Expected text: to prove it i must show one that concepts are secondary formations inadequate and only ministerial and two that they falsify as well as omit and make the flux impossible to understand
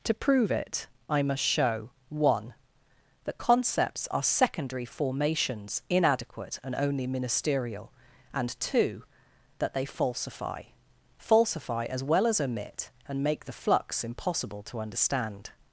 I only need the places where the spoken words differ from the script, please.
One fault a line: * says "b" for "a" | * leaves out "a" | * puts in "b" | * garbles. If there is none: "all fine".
* puts in "falsify"